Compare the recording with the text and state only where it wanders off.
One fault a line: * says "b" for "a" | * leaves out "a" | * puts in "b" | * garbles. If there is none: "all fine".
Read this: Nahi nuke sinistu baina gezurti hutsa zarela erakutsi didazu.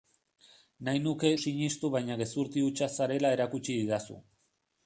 all fine